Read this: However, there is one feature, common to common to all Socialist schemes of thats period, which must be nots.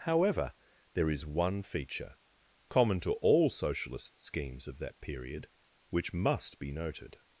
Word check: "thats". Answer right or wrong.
wrong